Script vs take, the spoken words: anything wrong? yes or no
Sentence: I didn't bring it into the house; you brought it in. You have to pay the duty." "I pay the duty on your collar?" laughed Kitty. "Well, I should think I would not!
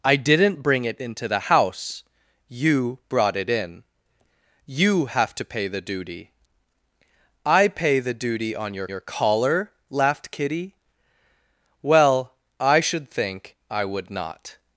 yes